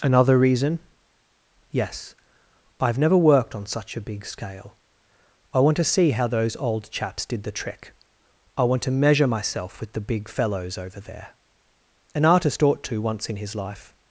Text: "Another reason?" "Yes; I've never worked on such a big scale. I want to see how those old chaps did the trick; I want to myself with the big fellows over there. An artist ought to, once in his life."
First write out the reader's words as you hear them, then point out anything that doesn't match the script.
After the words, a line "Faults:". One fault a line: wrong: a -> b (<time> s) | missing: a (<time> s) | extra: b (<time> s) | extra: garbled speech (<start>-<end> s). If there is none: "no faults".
"Another reason?" "Yes; I've never worked on such a big scale. I want to see how those old chaps did the trick; I want to measure myself with the big fellows over there. An artist ought to, once in his life."
Faults:
extra: measure (8.9 s)